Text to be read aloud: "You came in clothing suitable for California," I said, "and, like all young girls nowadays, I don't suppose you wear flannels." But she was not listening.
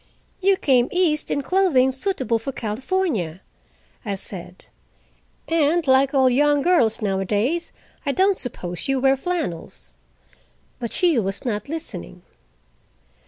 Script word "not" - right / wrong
right